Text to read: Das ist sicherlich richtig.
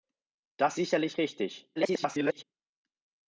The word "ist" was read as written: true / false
false